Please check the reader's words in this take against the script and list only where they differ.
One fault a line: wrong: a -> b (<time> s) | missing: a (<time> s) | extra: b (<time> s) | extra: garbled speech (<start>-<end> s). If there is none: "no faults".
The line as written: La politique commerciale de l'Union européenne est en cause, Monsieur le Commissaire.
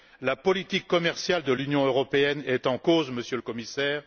no faults